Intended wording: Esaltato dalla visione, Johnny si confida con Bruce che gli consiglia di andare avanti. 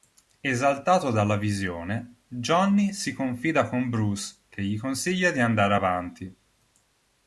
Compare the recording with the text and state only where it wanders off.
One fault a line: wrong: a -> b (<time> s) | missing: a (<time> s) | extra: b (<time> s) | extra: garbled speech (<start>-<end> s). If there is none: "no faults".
no faults